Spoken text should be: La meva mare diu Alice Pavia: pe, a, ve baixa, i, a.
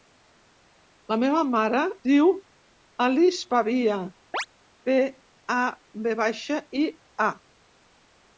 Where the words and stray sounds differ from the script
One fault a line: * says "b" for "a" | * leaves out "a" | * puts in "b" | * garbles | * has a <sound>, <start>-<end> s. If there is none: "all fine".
* has a chirp, 4.3-4.5 s